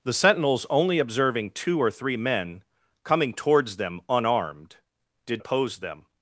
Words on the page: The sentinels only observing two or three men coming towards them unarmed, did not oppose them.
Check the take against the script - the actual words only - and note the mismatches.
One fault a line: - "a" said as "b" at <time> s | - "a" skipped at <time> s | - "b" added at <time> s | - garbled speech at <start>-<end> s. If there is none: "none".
- "not" skipped at 5.4 s